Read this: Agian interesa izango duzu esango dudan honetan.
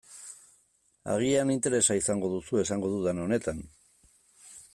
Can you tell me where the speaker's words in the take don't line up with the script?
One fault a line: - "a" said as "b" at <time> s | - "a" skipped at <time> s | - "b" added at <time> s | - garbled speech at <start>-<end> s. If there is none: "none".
none